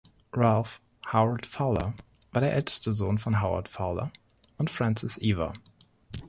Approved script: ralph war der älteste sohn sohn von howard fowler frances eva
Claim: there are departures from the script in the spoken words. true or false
true